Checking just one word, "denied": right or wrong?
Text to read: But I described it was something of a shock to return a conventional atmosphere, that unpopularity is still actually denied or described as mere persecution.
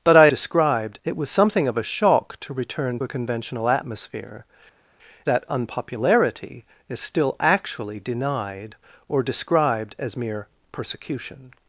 right